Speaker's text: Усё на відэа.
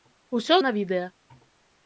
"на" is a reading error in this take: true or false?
false